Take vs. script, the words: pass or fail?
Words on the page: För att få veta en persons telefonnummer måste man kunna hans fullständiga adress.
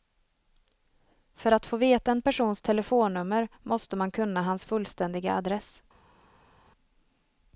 pass